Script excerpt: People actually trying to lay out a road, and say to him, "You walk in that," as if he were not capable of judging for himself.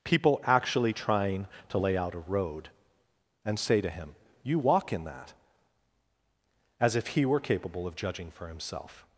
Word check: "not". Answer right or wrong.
wrong